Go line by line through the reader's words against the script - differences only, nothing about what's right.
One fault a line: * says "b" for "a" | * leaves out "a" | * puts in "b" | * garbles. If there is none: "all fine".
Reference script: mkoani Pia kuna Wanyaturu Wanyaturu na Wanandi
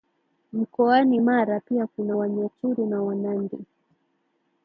* puts in "Mara"
* leaves out "Wanyaturu"